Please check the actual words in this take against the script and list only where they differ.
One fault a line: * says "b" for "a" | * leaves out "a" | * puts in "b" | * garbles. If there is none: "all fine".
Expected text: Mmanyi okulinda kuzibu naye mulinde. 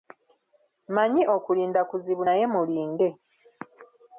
all fine